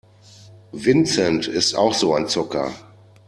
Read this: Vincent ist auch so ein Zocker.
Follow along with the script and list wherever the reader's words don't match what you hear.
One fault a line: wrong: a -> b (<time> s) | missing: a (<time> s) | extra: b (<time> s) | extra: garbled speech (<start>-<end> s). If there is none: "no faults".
no faults